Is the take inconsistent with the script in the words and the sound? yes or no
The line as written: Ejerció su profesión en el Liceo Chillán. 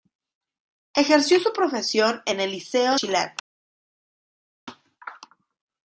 no